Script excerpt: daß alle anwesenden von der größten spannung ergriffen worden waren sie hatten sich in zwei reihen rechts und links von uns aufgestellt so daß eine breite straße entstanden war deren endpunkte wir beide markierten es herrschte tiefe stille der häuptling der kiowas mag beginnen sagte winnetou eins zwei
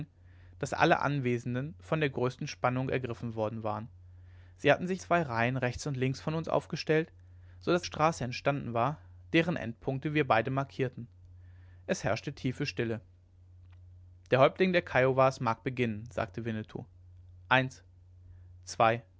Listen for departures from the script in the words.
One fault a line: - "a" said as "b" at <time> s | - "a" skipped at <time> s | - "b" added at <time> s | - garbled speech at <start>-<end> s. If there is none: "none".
- "in" skipped at 5.0 s
- "eine breite" skipped at 7.8 s